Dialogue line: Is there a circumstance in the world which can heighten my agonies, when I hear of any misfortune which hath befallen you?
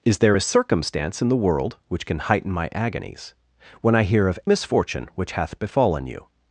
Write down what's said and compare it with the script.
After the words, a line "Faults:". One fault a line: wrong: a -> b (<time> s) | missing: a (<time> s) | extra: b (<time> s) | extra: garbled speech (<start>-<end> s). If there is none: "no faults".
Is there a circumstance in the world which can heighten my agonies, when I hear of misfortune which hath befallen you?
Faults:
missing: any (4.4 s)